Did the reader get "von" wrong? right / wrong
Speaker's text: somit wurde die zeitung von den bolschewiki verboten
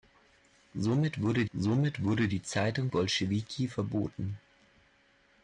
wrong